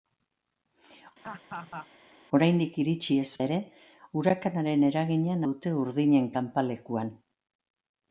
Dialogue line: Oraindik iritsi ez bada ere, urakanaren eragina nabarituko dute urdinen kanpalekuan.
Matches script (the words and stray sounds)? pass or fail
fail